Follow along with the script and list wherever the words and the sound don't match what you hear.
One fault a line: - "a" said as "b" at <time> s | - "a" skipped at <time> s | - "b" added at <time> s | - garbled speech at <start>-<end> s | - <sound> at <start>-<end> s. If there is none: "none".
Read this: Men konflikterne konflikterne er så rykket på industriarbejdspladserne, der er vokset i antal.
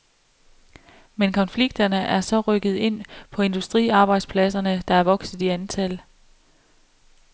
- "konflikterne" skipped at 1.9 s
- "ind" added at 2.8 s